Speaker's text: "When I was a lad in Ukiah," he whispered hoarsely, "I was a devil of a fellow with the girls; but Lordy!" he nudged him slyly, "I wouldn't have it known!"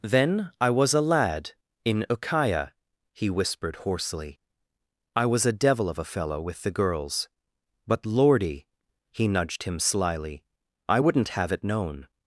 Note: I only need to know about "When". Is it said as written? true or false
false